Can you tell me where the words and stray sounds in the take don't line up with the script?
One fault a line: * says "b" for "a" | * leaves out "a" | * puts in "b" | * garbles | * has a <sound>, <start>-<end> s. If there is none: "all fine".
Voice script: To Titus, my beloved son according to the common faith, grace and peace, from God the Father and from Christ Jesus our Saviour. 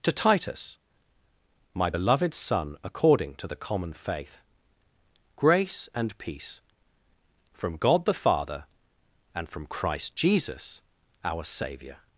all fine